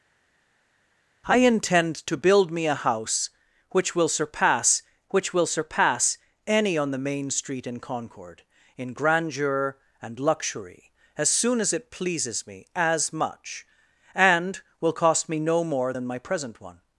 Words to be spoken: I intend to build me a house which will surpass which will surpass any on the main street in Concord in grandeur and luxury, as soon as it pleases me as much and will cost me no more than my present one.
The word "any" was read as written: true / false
true